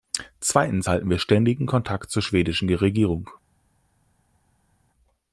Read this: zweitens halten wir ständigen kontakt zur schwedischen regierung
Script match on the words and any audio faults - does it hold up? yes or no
yes